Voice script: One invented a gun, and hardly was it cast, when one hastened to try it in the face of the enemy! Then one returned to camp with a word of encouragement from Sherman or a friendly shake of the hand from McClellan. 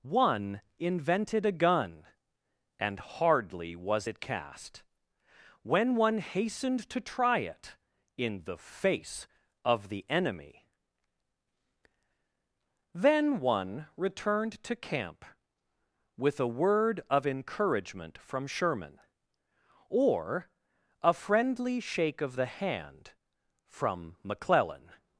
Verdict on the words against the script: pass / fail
pass